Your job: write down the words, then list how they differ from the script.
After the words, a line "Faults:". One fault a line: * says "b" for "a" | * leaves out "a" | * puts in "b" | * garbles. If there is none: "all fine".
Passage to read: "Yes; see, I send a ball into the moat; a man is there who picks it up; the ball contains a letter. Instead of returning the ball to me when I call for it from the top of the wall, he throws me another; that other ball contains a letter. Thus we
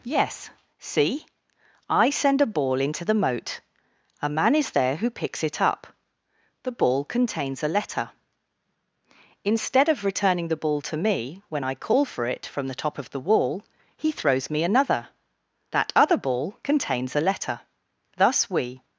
"Yes; see, I send a ball into the moat; a man is there who picks it up; the ball contains a letter. Instead of returning the ball to me when I call for it from the top of the wall, he throws me another; that other ball contains a letter. Thus we
Faults:
all fine